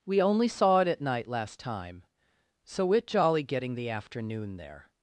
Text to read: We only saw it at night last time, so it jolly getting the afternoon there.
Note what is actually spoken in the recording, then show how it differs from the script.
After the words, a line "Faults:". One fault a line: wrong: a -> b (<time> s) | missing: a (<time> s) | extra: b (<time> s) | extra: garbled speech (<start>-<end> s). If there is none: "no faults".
We only saw it at night last time, so it jolly getting the afternoon there.
Faults:
no faults